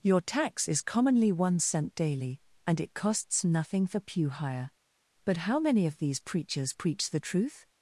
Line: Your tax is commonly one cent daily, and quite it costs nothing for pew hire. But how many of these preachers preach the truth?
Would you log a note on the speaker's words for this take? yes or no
yes